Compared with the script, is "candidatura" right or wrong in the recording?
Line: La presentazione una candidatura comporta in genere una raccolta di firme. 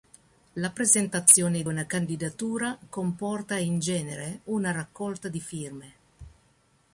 right